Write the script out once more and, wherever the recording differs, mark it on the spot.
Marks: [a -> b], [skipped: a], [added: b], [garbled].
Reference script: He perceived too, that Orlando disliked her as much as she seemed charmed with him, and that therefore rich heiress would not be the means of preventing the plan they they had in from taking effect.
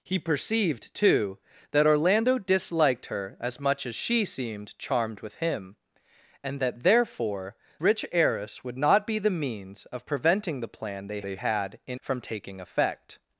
He perceived too, that Orlando disliked her as much as she seemed charmed with him, and that therefore rich heiress would not be the means of preventing the plan they they had in from taking effect.